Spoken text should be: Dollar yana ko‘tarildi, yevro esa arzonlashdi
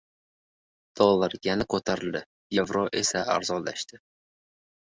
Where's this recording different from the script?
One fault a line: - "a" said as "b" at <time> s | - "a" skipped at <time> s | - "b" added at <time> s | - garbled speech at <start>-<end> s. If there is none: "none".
none